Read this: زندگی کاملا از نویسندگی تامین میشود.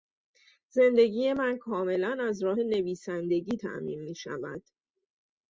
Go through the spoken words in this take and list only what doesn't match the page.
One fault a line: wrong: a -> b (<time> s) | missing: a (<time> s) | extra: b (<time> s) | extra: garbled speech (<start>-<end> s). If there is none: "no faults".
extra: من (1.3 s)
extra: راه (2.4 s)